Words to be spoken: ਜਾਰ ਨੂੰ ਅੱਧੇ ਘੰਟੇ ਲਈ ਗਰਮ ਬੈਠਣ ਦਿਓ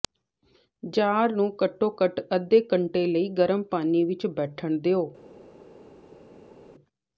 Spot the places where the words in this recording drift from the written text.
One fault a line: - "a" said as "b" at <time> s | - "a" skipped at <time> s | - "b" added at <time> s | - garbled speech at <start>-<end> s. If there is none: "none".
- "ਘੱਟੋ ਘੱਟ" added at 1.6 s
- "ਪਾਣੀ ਵਿਚ" added at 3.6 s